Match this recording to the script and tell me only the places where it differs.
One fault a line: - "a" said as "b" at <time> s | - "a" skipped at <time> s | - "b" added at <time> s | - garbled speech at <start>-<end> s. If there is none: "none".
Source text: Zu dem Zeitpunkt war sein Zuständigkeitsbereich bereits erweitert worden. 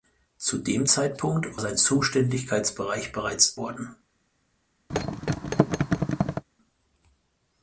- "war" skipped at 1.6 s
- "erweitert" skipped at 3.6 s